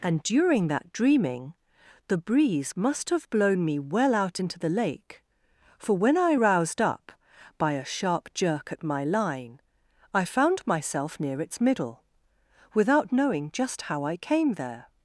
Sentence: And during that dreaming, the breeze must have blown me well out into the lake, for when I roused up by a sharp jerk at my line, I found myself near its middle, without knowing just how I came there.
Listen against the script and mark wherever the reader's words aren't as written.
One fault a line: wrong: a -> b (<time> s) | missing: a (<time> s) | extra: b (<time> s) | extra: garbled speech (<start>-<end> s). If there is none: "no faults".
no faults